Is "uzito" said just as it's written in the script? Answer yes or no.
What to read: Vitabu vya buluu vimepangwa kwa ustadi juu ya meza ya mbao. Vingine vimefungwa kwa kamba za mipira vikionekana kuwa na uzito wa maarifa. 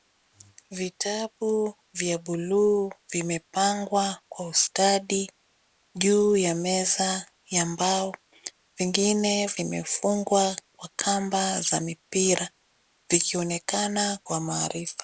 no